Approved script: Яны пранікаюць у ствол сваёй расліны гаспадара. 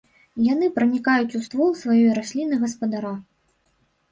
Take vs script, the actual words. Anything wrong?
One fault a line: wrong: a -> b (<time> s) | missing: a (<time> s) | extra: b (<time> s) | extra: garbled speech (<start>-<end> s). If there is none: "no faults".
no faults